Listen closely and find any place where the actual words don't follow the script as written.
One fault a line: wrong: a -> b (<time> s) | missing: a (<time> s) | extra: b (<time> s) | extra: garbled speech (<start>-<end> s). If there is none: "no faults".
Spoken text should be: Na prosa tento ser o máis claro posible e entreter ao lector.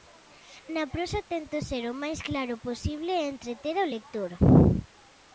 no faults